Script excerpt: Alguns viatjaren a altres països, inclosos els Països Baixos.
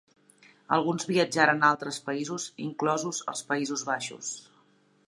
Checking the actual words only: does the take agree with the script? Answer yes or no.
yes